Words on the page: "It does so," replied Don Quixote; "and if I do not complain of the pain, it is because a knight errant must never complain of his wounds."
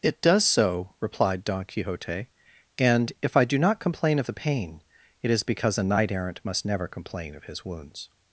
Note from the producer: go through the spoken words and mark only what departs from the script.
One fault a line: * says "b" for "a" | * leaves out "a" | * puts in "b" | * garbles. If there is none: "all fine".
all fine